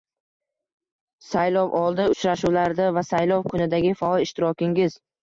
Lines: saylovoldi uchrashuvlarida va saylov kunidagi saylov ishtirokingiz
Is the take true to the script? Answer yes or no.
no